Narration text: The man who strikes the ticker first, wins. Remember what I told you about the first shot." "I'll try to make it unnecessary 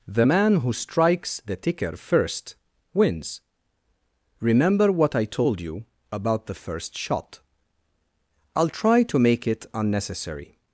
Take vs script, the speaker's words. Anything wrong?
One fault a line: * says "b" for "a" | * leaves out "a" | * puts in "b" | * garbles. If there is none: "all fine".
all fine